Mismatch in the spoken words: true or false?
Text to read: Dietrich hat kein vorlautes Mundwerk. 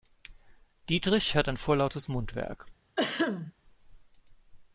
true